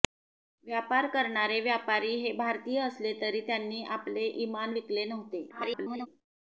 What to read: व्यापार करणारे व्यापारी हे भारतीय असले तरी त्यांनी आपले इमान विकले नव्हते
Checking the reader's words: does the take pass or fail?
fail